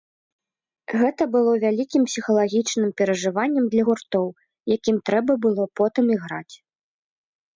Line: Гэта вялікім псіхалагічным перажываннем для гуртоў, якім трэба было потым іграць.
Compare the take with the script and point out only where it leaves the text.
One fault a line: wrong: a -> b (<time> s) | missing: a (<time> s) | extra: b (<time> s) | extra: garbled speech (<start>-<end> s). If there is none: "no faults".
extra: было (1.4 s)